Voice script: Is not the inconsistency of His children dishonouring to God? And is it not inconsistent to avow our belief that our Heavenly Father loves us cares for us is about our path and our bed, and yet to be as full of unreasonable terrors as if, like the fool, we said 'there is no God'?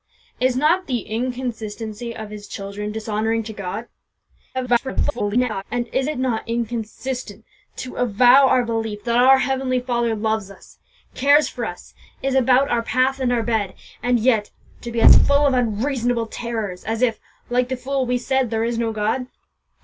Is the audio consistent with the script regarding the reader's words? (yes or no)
no